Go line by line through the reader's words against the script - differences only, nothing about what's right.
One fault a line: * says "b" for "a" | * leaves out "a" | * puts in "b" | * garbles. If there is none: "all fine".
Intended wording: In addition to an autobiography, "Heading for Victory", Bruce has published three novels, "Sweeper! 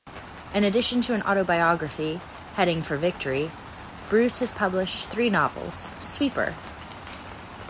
all fine